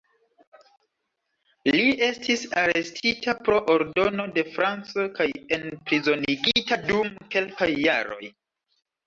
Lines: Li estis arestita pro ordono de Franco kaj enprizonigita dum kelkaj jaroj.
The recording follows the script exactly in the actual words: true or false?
true